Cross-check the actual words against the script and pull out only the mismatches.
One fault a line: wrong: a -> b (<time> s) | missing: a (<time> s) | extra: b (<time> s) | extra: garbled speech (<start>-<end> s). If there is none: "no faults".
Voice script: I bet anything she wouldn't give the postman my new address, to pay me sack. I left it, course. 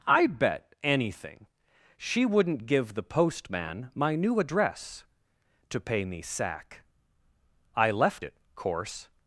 no faults